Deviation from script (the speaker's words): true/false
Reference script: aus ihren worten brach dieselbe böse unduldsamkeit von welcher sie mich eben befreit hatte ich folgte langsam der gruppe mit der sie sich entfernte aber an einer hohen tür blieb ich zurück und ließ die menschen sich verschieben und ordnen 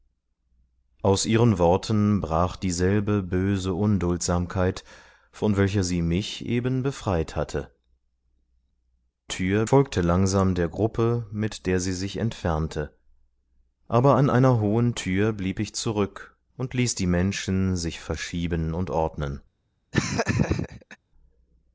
true